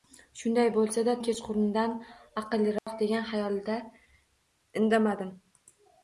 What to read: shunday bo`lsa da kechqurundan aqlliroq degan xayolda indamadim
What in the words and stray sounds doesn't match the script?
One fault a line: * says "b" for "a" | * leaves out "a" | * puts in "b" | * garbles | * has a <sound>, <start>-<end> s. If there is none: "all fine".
* has a dropout, 2.8-2.9 s